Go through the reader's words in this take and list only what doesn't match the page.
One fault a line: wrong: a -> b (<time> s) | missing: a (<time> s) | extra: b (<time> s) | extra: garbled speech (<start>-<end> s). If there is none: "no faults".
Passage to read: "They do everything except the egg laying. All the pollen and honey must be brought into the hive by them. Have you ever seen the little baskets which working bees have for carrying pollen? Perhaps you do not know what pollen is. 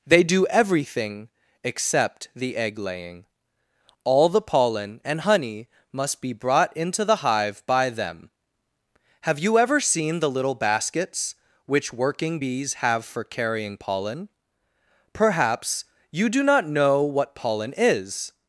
no faults